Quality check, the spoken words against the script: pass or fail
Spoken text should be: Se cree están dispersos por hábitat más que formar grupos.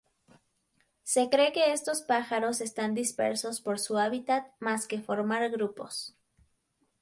fail